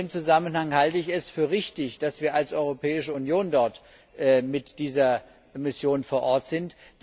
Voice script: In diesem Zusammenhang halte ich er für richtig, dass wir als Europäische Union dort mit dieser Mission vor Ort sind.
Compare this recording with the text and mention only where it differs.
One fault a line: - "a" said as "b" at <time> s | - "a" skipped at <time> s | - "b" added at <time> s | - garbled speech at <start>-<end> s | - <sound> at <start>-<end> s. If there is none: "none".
- "er" said as "es" at 1.1 s